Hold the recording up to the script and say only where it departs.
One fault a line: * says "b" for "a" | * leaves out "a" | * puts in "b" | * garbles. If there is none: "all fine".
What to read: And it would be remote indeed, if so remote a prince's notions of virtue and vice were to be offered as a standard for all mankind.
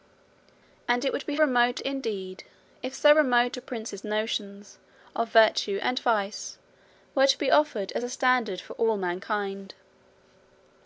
all fine